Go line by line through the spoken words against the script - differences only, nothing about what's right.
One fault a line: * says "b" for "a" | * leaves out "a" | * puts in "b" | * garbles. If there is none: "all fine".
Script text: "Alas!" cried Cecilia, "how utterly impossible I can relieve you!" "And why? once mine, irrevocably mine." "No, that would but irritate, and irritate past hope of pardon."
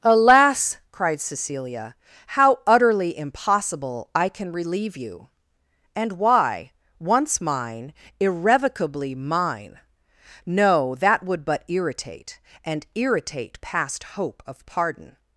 all fine